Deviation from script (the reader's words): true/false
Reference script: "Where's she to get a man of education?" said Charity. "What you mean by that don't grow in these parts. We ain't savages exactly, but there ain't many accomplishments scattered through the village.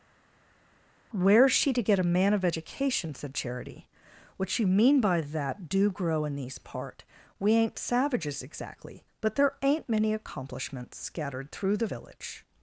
true